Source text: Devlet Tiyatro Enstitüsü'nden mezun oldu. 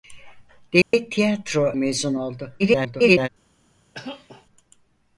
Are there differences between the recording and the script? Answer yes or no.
yes